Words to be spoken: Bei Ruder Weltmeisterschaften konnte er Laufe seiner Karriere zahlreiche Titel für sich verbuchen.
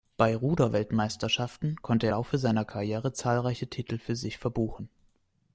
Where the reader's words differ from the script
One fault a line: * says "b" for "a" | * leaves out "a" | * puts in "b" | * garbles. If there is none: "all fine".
all fine